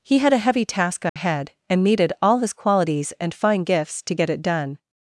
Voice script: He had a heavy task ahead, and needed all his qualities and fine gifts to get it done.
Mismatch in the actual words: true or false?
false